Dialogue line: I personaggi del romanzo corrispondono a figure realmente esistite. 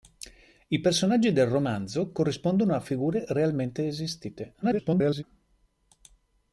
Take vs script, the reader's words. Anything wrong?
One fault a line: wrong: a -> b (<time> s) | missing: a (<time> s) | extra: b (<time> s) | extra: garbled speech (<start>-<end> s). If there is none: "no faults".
extra: garbled speech (4.6-5.2 s)